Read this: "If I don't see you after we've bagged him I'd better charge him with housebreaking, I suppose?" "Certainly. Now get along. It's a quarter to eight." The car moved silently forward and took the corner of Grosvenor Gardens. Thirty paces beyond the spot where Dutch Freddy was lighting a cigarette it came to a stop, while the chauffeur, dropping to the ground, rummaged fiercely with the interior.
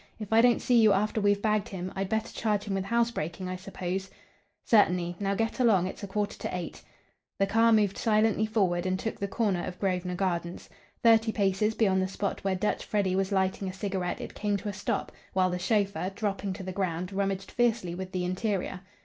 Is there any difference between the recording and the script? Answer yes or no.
no